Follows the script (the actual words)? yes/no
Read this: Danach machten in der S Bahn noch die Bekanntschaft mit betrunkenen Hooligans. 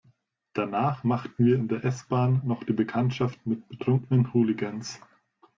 no